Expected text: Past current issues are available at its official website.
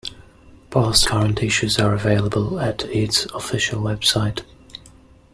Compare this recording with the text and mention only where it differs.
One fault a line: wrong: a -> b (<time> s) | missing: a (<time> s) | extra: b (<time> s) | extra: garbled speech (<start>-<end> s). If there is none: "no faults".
no faults